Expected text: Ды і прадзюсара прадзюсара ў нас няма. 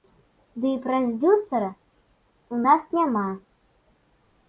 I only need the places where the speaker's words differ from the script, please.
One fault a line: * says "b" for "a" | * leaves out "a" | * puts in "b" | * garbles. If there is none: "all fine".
* leaves out "прадзюсара"